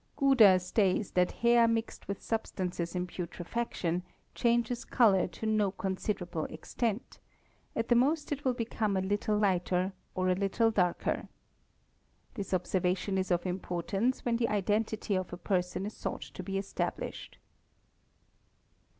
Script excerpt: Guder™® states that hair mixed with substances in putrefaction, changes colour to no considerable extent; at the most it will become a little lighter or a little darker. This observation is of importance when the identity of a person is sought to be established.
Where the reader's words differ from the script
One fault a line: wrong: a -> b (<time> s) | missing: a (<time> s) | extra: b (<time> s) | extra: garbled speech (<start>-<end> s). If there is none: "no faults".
no faults